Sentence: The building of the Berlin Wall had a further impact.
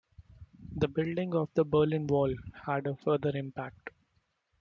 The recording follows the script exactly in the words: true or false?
true